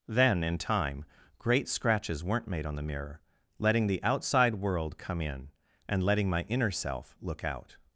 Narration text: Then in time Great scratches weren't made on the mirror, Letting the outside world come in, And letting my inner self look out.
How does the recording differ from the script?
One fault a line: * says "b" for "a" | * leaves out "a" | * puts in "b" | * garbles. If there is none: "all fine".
all fine